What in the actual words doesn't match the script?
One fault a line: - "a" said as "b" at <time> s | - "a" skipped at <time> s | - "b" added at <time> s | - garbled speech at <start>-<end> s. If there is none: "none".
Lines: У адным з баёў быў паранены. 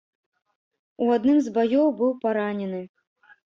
none